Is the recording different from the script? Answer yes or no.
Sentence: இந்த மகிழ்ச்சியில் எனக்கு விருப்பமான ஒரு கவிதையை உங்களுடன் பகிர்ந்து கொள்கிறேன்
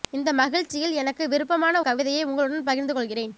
yes